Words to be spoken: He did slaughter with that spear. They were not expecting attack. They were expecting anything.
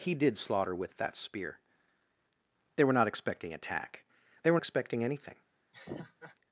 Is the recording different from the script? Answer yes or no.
no